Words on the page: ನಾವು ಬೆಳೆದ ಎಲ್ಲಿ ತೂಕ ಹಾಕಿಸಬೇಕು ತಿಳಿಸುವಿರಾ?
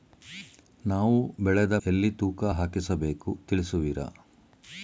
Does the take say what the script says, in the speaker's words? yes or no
yes